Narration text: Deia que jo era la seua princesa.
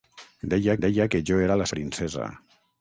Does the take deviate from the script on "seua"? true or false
true